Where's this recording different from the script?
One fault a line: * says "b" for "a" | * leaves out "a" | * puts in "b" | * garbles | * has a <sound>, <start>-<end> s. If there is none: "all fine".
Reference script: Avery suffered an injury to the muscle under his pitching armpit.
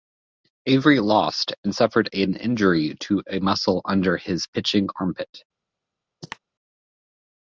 * puts in "lost and"
* says "a" for "the"
* has a cough, 6.2-6.4 s